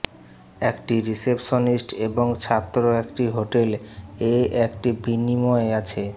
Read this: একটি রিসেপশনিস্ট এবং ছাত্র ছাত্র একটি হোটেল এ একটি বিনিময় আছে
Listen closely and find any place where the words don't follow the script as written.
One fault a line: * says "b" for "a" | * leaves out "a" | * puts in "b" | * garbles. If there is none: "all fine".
* leaves out "ছাত্র"